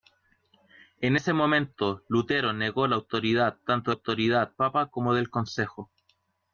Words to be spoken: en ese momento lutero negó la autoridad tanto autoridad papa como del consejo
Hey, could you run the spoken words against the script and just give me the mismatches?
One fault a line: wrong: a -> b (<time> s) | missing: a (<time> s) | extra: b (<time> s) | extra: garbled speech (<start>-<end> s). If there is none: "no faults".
no faults